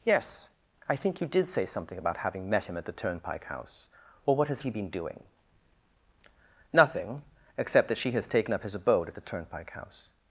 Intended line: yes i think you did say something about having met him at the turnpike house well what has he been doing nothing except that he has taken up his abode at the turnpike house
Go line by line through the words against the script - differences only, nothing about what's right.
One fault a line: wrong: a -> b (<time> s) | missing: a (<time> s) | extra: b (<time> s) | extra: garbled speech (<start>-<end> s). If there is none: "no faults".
wrong: he -> she (8.0 s)